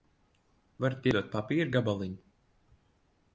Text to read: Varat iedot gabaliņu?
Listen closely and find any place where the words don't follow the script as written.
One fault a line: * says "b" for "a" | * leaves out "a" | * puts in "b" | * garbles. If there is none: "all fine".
* puts in "papīra"